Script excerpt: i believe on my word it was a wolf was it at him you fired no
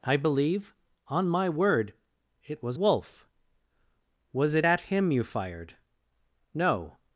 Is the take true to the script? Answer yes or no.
no